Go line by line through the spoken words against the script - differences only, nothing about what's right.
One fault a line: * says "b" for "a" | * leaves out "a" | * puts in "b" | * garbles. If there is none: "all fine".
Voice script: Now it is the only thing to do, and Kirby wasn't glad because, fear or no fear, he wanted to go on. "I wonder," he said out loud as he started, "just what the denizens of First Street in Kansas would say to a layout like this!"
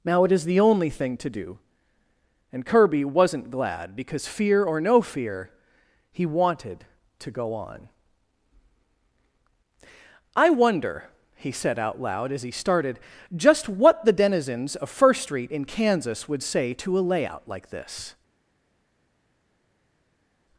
all fine